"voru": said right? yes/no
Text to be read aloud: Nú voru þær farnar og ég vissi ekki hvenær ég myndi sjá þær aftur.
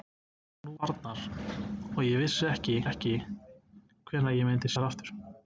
no